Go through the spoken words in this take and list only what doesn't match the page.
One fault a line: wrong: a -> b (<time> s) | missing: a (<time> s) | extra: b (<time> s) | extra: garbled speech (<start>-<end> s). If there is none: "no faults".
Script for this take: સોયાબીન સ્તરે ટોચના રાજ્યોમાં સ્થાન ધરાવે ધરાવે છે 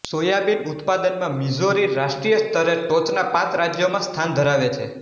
extra: ઉત્પાદનમાં મિઝોરી રાષ્ટ્રીય (0.7 s)
extra: પાંચ (3.3 s)
missing: ધરાવે (4.7 s)